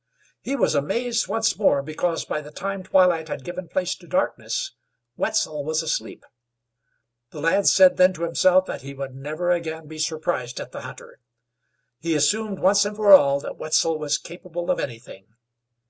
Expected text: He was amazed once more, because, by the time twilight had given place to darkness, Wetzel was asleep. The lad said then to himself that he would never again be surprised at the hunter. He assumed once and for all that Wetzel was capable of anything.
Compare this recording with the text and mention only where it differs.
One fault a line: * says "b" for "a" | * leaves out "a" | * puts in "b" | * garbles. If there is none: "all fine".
all fine